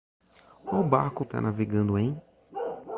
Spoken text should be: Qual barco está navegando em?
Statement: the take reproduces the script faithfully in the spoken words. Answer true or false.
true